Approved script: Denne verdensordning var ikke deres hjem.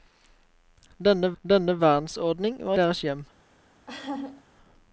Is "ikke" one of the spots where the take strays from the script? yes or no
yes